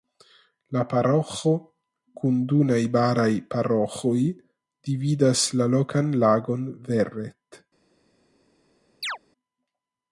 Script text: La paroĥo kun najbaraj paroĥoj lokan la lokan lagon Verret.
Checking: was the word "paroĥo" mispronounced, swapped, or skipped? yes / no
no